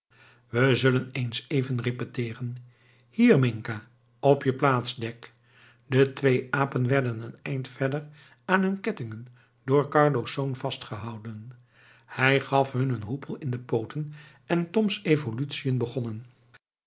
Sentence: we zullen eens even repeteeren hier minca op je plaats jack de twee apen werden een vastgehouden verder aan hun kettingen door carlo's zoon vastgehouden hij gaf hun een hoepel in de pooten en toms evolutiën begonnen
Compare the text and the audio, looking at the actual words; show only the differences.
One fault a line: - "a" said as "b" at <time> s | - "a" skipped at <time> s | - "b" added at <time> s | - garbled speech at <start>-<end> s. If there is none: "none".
- "vastgehouden" said as "eind" at 7.4 s